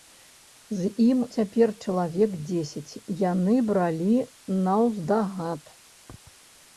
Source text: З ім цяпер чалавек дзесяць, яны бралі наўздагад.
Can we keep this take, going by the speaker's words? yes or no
yes